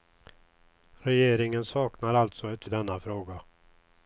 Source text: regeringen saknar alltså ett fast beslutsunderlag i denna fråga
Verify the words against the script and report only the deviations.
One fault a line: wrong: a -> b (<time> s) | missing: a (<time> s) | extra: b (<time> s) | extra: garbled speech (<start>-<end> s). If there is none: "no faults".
missing: fast beslutsunderlag (2.6 s)